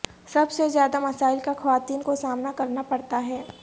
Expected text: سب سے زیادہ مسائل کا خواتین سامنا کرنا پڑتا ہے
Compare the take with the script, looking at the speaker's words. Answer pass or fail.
fail